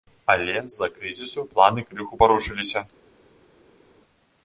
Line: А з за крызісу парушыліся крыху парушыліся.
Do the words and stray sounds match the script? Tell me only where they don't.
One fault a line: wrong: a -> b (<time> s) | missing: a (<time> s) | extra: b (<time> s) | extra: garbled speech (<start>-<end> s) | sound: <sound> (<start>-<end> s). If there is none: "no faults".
wrong: А -> Але (0.3 s)
wrong: парушыліся -> планы (1.5 s)